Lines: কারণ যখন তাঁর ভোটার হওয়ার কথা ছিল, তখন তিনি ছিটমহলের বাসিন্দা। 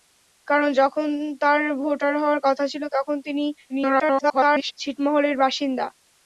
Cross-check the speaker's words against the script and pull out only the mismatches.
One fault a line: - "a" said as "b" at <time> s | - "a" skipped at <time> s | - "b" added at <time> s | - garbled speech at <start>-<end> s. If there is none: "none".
- garbled speech at 3.7-4.7 s